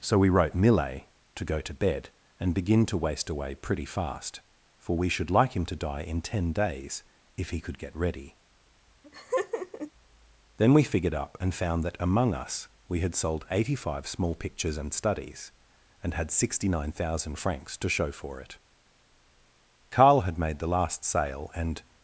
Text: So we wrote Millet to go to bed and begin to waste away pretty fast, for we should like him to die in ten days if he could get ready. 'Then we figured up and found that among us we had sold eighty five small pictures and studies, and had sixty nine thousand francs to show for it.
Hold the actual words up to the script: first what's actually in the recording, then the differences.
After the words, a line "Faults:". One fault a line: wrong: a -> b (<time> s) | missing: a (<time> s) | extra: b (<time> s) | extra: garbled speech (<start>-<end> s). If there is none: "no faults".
So we wrote Millet to go to bed and begin to waste away pretty fast, for we should like him to die in ten days if he could get ready. 'Then we figured up and found that among us we had sold eighty five small pictures and studies, and had sixty nine thousand francs to show for it. Carl had made the last sale and
Faults:
extra: Carl had made the last sale and (19.9 s)